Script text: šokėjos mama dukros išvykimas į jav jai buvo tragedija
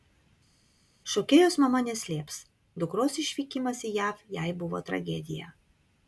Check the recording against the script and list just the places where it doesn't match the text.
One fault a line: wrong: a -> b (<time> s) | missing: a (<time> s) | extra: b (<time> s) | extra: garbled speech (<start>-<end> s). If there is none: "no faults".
extra: neslėps (1.8 s)